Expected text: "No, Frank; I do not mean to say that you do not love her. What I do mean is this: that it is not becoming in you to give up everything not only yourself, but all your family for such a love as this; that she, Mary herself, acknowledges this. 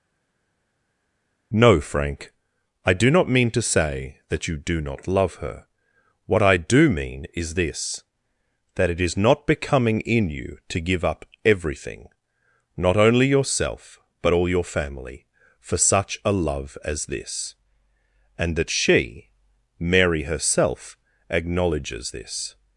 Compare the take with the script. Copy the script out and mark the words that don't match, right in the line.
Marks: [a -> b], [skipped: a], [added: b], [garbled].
"No, Frank; I do not mean to say that you do not love her. What I do mean is this: that it is not becoming in you to give up everything not only yourself, but all your family for such a love as this; [added: and] that she, Mary herself, acknowledges this.